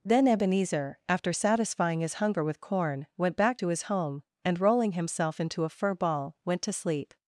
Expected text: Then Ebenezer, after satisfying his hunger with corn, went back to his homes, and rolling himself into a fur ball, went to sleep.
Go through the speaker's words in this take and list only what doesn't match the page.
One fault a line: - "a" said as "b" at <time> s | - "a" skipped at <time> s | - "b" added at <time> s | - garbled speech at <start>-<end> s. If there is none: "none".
- "homes" said as "home" at 3.8 s